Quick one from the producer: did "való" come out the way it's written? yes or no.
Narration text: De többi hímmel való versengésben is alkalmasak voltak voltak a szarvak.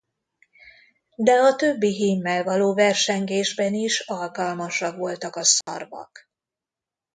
yes